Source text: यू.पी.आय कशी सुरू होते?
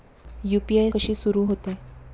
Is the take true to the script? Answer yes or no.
yes